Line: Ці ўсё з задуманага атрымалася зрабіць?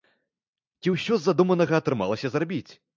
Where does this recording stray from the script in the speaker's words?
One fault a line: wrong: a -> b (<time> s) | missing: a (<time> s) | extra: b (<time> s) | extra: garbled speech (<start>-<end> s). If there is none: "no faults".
no faults